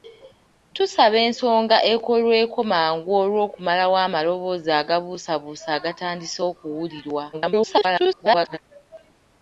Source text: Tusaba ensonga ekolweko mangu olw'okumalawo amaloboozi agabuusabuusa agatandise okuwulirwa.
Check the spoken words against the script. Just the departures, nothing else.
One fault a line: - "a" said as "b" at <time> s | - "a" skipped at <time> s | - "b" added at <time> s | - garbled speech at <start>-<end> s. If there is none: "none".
- garbled speech at 7.3-8.6 s